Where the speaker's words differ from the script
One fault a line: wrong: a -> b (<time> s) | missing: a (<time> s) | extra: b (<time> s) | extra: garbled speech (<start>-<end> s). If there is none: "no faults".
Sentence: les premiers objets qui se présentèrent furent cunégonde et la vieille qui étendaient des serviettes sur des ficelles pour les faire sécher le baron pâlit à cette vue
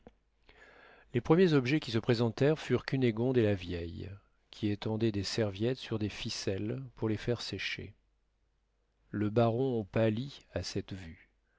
no faults